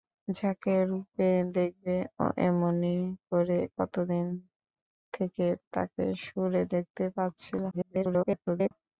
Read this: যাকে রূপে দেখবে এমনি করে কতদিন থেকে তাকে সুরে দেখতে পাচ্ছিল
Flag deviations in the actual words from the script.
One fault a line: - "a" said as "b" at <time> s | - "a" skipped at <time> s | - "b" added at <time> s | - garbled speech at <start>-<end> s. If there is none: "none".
- garbled speech at 7.7-8.7 s